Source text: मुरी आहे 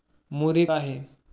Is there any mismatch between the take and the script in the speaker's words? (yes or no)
no